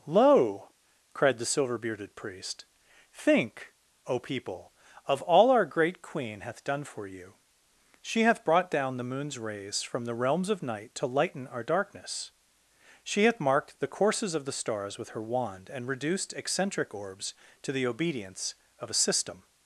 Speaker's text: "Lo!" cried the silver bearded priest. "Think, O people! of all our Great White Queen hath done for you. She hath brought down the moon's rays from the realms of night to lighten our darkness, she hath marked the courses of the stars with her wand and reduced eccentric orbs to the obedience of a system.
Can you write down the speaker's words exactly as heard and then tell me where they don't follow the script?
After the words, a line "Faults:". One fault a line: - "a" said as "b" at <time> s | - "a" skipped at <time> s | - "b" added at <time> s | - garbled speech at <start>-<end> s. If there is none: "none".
"Lo!" cried the silver bearded priest. "Think, O people! of all our Great Queen hath done for you. She hath brought down the moon's rays from the realms of night to lighten our darkness, she hath marked the courses of the stars with her wand and reduced eccentric orbs to the obedience of a system.
Faults:
- "White" skipped at 6.0 s